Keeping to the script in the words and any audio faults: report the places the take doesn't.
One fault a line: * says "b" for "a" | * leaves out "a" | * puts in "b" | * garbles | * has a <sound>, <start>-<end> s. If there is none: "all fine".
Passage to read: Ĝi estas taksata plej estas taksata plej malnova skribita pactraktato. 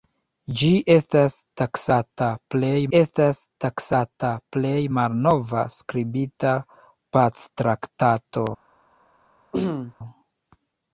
* has a throat clearing, 9.5-10.0 s